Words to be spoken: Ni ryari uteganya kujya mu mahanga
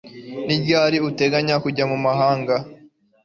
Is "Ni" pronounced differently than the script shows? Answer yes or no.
no